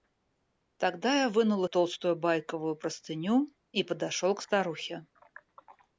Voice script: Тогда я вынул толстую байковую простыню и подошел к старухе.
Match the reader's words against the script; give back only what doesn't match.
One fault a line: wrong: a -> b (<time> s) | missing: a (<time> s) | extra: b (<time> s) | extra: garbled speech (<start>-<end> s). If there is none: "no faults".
no faults